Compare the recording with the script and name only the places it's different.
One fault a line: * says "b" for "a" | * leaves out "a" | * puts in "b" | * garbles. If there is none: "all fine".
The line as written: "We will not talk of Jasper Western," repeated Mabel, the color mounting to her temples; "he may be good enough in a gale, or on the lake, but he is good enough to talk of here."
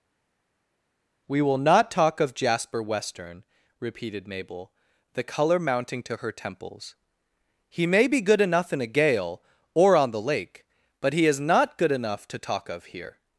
* puts in "not"